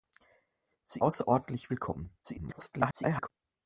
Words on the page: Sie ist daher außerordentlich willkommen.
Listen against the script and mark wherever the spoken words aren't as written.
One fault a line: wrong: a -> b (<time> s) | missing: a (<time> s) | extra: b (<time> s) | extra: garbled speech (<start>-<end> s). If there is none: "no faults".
missing: ist daher (1.0 s)
extra: garbled speech (2.2-3.3 s)